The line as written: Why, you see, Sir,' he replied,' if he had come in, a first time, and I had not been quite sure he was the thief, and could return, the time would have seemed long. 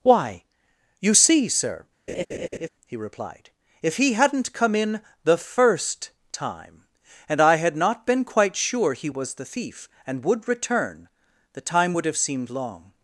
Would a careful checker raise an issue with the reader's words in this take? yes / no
yes